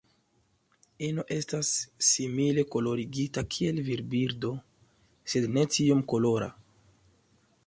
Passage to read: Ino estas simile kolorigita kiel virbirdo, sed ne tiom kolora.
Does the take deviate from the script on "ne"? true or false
false